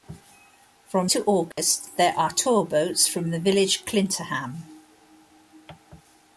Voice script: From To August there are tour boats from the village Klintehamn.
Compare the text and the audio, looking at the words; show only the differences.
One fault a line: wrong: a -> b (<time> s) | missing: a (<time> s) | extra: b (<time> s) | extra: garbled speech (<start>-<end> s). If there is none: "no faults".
no faults